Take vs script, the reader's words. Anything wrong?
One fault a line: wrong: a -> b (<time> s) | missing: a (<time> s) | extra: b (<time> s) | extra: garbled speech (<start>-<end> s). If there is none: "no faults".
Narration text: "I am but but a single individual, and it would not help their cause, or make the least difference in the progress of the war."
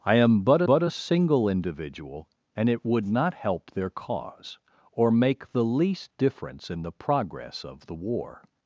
no faults